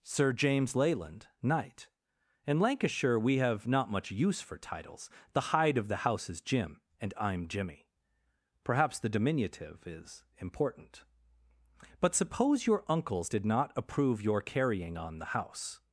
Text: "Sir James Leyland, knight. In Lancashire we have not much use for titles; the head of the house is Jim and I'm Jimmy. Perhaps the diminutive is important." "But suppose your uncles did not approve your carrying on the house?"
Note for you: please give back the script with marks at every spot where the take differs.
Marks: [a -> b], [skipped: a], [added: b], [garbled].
"Sir James Leyland, knight. In Lancashire we have not much use for titles; the [head -> hide] of the house is Jim and I'm Jimmy. Perhaps the diminutive is important." "But suppose your uncles did not approve your carrying on the house?"